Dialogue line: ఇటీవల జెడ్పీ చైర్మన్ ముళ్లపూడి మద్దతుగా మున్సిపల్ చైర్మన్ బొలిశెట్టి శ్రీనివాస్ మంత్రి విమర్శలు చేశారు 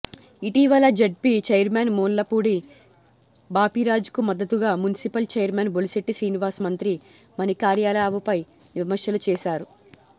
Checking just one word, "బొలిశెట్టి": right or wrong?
right